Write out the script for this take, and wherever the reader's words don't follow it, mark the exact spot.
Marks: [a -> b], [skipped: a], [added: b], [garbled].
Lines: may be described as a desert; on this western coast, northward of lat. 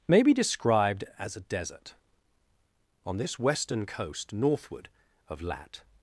may be described as a desert; on this western coast, northward of lat.